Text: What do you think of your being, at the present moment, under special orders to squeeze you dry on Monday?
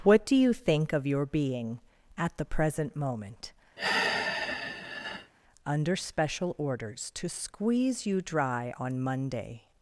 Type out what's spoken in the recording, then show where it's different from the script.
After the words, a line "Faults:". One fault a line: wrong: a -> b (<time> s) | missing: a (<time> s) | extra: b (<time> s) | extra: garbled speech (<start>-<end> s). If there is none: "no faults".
What do you think of your being, at the present moment, under special orders to squeeze you dry on Monday?
Faults:
no faults